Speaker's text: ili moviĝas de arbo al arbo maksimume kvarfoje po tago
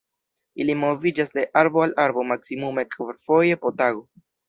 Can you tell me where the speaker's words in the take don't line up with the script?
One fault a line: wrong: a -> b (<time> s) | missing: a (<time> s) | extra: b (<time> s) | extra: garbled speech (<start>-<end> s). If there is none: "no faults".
no faults